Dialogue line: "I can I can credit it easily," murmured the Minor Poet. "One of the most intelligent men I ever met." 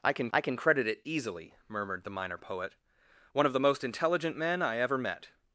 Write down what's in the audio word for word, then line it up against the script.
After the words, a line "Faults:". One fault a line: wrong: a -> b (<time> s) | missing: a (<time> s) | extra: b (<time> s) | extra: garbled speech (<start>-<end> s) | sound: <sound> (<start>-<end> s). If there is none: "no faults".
"I can I can credit it easily," murmured the Minor Poet. "One of the most intelligent men I ever met."
Faults:
no faults